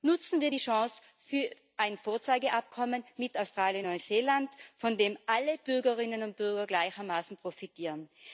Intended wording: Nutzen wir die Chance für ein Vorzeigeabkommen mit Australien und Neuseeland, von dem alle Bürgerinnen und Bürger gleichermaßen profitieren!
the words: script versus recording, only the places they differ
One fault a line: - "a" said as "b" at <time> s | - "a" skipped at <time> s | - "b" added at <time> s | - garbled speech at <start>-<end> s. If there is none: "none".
none